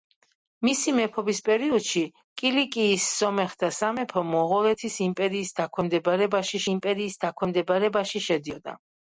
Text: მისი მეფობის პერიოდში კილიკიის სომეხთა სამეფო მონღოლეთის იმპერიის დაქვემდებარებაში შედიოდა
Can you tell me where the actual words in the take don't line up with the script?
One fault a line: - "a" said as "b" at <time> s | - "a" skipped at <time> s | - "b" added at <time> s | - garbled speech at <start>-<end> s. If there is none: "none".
- "იმპერიის დაქვემდებარებაში" added at 6.8 s